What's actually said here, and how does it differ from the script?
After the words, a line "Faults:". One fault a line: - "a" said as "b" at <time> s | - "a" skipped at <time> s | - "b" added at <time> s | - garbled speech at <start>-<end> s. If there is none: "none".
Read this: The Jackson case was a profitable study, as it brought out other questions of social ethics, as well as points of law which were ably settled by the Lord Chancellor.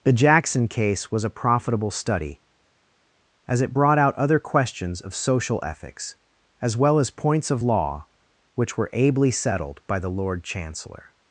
The Jackson case was a profitable study, as it brought out other questions of social ethics, as well as points of law which were ably settled by the Lord Chancellor.
Faults:
none